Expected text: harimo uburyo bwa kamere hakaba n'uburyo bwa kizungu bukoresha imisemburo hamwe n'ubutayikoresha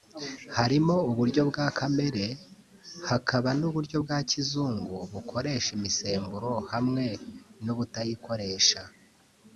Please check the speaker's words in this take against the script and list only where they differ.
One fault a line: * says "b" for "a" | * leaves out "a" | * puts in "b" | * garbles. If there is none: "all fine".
all fine